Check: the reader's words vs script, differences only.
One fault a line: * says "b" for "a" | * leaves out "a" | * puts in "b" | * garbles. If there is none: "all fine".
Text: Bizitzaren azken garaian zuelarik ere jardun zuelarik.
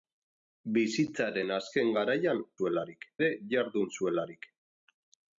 all fine